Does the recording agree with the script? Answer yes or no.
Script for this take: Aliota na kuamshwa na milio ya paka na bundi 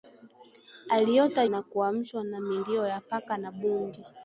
yes